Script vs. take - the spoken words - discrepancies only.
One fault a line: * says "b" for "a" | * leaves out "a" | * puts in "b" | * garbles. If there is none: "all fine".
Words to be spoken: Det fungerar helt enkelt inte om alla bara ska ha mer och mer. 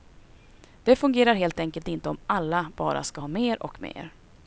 all fine